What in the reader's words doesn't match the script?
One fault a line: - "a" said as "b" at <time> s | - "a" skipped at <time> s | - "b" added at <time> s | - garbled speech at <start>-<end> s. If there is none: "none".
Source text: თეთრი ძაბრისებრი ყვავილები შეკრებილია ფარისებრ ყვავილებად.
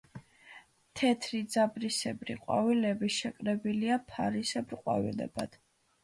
none